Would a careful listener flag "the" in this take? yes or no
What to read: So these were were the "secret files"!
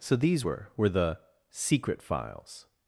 no